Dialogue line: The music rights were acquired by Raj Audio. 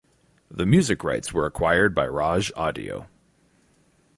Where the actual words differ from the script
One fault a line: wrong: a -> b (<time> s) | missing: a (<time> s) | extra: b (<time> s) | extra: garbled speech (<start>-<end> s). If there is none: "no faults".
no faults